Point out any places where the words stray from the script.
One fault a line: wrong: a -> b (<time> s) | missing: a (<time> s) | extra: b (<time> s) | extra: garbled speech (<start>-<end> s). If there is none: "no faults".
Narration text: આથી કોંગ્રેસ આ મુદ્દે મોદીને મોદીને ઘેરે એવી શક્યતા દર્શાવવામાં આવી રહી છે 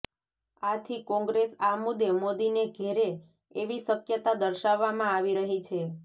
missing: મોદીને (2.6 s)